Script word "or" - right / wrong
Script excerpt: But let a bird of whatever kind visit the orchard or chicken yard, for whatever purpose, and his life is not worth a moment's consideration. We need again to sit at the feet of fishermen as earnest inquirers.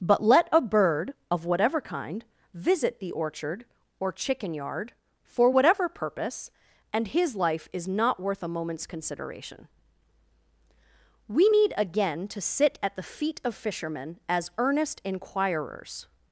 right